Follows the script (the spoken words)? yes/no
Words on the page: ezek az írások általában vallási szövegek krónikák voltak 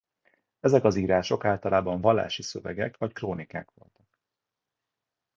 no